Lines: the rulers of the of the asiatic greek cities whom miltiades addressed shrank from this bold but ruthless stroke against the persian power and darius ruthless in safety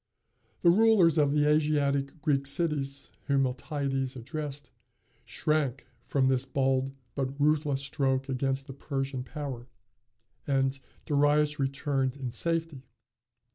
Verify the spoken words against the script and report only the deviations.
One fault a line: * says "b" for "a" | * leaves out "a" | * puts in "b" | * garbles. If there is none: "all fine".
* leaves out "of the"
* says "returned" for "ruthless"